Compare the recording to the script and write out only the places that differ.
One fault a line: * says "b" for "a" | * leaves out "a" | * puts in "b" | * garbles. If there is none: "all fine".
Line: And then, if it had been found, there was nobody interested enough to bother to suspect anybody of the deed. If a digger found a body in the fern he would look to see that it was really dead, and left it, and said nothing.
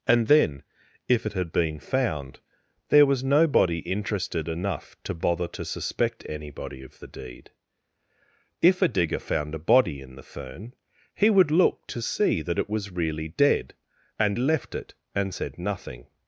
all fine